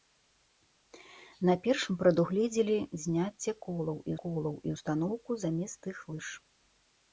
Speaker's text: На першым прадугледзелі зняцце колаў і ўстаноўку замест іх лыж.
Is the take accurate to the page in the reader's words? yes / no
no